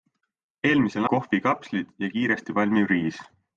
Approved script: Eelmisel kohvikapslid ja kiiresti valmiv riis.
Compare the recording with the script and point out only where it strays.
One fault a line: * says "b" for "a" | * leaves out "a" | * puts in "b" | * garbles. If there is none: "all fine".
all fine